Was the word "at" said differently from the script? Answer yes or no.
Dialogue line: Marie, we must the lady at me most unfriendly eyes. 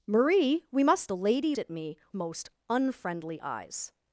no